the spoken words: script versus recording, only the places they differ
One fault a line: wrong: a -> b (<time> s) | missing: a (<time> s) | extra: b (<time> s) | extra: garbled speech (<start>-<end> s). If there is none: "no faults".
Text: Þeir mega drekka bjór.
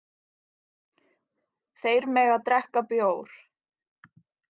no faults